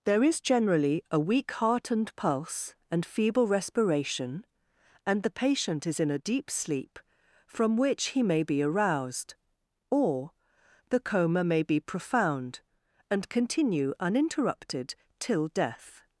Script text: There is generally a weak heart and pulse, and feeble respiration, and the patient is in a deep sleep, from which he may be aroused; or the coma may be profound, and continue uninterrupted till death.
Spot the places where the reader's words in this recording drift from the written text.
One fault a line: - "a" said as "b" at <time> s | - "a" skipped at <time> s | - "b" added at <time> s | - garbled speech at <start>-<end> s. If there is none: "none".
none